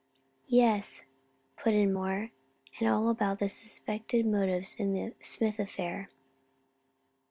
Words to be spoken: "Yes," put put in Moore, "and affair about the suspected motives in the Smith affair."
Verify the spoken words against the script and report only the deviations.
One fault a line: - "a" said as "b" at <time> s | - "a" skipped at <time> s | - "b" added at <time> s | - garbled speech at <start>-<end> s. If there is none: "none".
- "put" skipped at 1.8 s
- "affair" said as "all" at 2.9 s